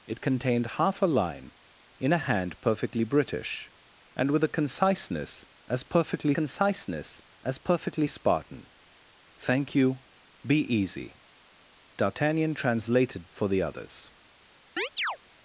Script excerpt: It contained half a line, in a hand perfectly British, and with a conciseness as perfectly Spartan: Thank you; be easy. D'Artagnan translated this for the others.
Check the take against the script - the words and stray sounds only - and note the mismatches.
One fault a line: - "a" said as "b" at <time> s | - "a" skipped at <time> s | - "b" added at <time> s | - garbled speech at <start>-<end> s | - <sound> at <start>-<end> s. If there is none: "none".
- "conciseness as perfectly" added at 6.3 s
- "this" skipped at 13.3 s
- chirp at 14.8-15.2 s